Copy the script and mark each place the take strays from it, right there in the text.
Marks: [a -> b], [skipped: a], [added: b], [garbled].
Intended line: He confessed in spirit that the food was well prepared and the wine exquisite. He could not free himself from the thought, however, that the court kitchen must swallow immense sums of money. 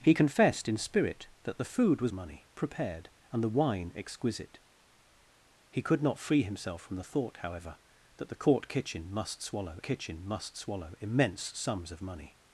He confessed in spirit that the food was [well -> money] prepared and the wine exquisite. He could not free himself from the thought, however, that the court kitchen must swallow [added: kitchen must swallow] immense sums of money.